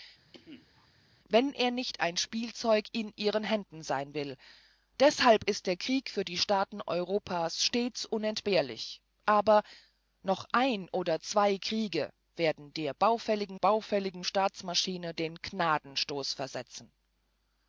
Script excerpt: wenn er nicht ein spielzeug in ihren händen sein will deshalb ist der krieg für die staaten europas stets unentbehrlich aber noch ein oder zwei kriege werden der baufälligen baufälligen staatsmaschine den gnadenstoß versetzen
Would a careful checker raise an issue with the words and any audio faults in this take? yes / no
yes